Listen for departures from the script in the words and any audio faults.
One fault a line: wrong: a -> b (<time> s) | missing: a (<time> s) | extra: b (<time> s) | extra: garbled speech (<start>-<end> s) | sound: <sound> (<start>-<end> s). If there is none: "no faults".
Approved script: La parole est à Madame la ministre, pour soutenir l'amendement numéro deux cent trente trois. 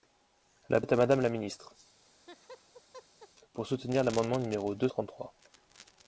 missing: parole (0.8 s)
sound: laugh (2.0-3.3 s)
missing: cent (4.9 s)